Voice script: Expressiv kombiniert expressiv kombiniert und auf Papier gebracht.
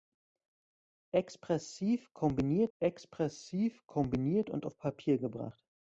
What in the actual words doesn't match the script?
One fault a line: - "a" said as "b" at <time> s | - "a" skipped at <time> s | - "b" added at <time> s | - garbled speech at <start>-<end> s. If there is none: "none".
none